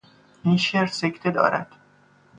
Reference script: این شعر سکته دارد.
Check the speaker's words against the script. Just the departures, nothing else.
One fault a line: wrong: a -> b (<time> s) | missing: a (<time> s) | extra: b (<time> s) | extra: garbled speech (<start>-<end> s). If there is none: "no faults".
no faults